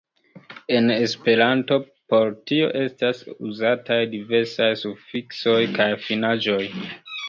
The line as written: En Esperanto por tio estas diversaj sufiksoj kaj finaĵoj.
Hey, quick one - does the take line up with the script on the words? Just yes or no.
no